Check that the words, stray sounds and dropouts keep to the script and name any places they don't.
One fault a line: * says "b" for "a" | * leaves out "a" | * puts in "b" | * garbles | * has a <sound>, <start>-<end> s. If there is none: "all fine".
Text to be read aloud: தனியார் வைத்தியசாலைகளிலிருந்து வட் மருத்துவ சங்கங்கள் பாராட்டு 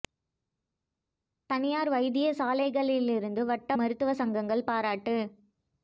all fine